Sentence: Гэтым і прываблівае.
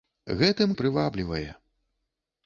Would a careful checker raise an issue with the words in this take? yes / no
no